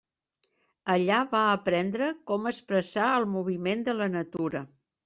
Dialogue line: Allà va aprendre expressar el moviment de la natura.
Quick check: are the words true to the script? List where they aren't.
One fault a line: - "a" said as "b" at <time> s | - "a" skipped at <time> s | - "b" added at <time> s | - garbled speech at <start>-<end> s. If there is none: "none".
- "com" added at 2.3 s